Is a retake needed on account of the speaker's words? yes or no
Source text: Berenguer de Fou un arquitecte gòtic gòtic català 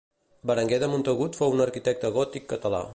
yes